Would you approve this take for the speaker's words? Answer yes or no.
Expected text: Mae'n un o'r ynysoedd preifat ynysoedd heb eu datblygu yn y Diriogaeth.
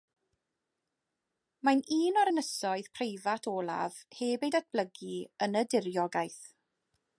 no